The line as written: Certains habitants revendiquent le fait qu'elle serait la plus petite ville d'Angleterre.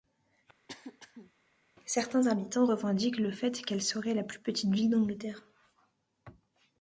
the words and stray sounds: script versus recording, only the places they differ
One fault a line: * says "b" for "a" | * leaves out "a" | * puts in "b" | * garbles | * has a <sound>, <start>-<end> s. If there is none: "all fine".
* has a throat clearing, 0.7-1.3 s